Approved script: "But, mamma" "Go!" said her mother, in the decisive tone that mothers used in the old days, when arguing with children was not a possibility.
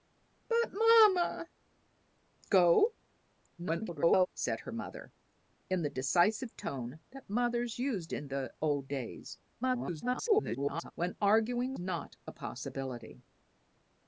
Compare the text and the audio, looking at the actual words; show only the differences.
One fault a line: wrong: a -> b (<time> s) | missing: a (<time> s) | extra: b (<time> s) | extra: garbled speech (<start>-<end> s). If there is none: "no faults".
extra: garbled speech (3.6-4.3 s)
extra: garbled speech (9.6-10.9 s)
missing: with children was (11.7 s)